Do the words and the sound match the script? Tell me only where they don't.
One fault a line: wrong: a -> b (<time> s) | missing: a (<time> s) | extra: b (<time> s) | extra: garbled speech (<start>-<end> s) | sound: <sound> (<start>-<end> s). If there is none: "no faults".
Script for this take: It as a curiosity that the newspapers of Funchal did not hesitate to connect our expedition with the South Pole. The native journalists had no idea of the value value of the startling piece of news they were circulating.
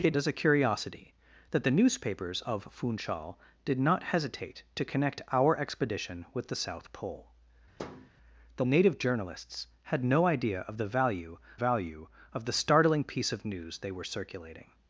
sound: thud (7.8-8.1 s)